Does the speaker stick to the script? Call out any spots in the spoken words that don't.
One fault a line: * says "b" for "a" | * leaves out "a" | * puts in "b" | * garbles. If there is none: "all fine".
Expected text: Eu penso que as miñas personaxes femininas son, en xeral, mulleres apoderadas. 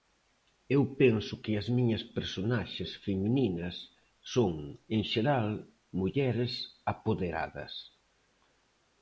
all fine